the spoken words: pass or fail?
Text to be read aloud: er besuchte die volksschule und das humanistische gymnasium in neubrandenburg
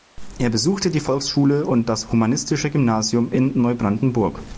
pass